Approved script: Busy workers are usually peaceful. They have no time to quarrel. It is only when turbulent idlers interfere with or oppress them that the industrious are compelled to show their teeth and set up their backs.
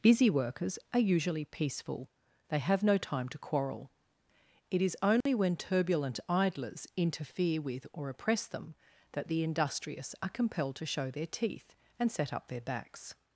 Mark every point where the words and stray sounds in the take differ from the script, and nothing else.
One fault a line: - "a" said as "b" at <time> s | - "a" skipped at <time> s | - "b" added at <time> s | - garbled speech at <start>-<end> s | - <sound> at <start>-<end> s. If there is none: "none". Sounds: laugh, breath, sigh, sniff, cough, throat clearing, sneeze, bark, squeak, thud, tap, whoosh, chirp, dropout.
- dropout at 5.2-5.3 s